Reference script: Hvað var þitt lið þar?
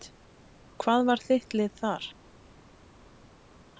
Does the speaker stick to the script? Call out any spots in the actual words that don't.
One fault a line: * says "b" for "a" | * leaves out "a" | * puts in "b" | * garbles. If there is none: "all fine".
all fine